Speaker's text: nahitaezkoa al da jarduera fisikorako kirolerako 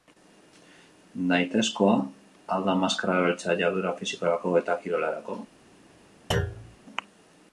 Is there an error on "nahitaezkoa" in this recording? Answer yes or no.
no